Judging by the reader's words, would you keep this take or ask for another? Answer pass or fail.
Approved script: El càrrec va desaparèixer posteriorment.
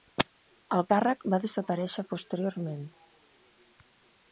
pass